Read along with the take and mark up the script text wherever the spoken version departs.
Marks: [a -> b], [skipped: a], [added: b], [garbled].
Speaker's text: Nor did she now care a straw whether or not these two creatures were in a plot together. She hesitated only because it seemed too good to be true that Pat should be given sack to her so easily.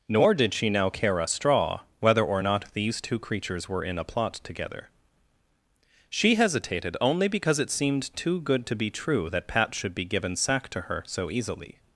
Nor did she now care a straw whether or not these two creatures were in a plot together. She hesitated only because it seemed too good to be true that Pat should be given sack to her so easily.